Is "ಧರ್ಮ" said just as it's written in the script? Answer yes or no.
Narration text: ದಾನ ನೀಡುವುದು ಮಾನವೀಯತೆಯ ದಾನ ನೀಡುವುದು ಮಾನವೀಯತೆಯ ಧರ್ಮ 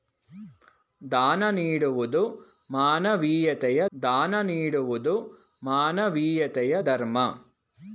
yes